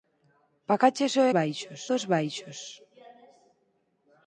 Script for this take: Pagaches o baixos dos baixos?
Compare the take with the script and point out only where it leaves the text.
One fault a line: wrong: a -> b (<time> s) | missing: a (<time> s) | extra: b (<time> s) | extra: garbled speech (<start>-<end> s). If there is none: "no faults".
no faults